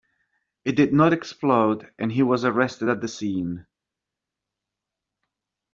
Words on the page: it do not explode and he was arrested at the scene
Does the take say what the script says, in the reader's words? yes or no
no